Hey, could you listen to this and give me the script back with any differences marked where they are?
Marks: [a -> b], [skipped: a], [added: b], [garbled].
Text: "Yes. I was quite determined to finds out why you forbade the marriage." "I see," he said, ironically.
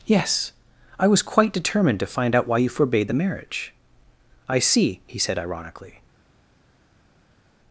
"Yes. I was quite determined to [finds -> find] out why you forbade the marriage." "I see," he said, ironically.